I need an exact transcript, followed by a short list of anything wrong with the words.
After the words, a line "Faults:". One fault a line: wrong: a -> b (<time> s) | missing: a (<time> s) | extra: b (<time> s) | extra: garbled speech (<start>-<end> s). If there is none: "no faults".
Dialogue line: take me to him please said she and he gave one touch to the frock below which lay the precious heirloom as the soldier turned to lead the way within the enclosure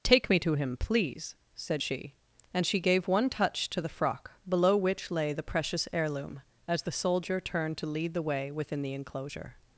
take me to him please said she and she gave one touch to the frock below which lay the precious heirloom as the soldier turned to lead the way within the enclosure
Faults:
wrong: he -> she (2.6 s)